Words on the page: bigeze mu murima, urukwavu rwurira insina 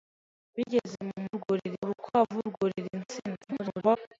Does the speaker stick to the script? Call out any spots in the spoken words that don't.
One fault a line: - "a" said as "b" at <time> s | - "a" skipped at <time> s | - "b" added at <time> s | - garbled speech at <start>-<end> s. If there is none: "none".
- "murima" said as "rwurira" at 1.3 s
- garbled speech at 3.4-4.0 s